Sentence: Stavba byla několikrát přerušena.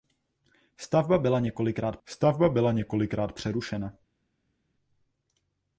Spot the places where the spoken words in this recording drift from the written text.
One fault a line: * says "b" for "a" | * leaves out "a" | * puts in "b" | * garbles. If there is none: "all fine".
* puts in "stavba byla několikrát"